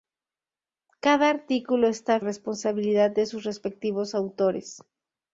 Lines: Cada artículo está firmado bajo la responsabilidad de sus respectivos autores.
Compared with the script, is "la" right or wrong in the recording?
wrong